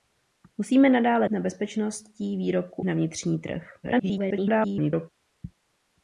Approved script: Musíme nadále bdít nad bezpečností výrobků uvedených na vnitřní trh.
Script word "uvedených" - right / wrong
wrong